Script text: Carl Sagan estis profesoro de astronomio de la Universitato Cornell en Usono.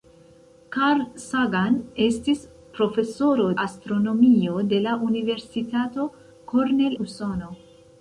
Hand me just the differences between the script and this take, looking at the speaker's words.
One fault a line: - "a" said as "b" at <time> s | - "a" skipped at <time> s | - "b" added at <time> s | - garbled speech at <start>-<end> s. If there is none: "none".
- "de" skipped at 3.5 s
- "en" skipped at 7.0 s